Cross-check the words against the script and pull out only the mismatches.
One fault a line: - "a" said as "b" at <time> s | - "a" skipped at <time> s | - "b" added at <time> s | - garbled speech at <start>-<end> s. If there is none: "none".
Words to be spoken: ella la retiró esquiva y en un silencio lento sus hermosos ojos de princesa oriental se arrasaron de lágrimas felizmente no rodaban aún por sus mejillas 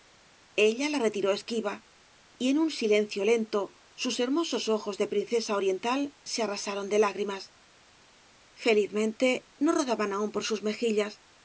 none